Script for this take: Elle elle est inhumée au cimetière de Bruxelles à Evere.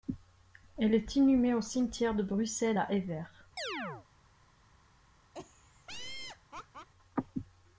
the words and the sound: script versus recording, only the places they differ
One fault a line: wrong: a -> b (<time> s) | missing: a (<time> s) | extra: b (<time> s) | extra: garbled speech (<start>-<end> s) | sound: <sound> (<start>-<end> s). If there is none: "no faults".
missing: elle (0.9 s)
sound: chirp (3.6-4.1 s)
sound: laugh (5.3-6.9 s)